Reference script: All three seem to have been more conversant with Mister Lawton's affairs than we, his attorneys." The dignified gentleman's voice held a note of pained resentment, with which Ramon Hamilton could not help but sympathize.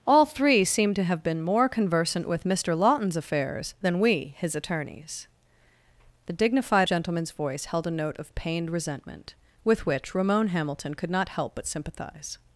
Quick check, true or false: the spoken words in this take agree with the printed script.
true